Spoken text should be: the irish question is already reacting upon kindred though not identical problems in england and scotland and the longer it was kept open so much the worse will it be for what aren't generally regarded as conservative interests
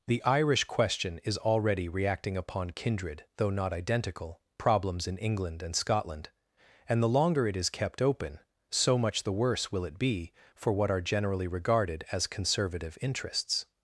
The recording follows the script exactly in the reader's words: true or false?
false